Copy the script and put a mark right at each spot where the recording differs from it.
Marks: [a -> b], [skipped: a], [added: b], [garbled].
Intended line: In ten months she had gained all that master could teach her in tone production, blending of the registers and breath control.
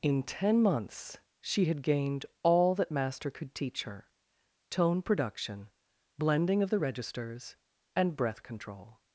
In ten months she had gained all that master could teach her [skipped: in] tone production, blending of the registers and breath control.